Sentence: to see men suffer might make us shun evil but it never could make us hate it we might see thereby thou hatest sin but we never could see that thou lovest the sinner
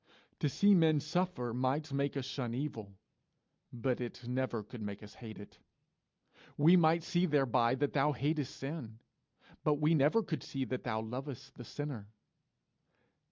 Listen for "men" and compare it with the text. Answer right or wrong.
right